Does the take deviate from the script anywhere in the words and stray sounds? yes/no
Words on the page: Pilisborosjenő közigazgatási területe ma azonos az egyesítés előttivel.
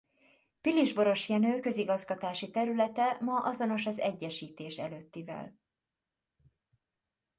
no